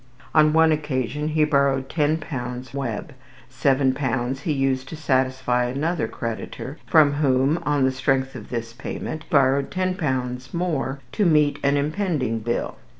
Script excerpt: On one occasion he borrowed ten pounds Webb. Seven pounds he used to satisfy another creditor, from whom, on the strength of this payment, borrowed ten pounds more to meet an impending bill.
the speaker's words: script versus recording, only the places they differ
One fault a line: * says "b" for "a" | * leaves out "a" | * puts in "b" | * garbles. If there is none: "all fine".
all fine